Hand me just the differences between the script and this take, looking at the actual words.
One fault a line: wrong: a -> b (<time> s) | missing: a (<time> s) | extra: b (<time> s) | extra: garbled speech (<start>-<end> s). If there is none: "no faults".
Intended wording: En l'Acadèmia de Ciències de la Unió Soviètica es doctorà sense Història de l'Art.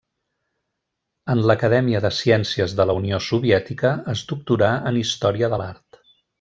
wrong: sense -> en (4.9 s)